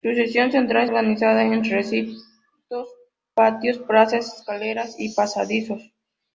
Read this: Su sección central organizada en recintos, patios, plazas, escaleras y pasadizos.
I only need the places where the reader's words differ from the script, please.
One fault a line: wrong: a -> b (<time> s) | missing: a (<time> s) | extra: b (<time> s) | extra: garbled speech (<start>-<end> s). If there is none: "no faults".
no faults